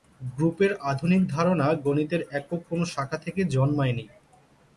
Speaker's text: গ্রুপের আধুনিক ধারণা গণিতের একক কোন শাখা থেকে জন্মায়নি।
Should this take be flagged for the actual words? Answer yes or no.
no